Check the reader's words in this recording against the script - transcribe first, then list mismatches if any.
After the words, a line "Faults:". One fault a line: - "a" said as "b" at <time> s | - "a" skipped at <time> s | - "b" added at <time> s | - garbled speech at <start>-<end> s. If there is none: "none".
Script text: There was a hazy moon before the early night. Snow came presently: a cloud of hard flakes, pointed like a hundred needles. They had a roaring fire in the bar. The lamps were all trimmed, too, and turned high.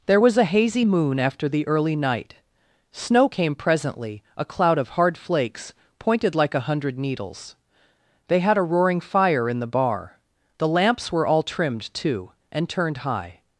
There was a hazy moon after the early night. Snow came presently: a cloud of hard flakes, pointed like a hundred needles. They had a roaring fire in the bar. The lamps were all trimmed, too, and turned high.
Faults:
- "before" said as "after" at 1.2 s